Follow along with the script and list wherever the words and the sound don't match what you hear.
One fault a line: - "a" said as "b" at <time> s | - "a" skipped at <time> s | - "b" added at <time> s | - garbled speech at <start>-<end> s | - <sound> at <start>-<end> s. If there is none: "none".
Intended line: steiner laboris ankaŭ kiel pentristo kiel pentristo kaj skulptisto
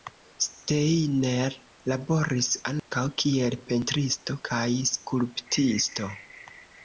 - dropout at 2.8-2.9 s
- "kiel pentristo" skipped at 4.4 s